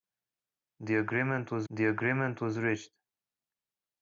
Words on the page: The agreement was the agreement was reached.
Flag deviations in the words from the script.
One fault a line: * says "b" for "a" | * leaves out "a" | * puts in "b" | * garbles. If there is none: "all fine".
all fine